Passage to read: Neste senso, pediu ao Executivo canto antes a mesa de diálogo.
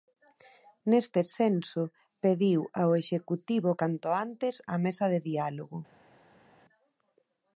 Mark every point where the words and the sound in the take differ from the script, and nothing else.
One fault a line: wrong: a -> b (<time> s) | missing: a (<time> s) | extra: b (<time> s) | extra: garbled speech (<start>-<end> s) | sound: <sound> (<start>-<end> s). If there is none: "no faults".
no faults